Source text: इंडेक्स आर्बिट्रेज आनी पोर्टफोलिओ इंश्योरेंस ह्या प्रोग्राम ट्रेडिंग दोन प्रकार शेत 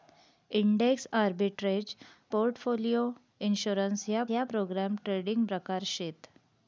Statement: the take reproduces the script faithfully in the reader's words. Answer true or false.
false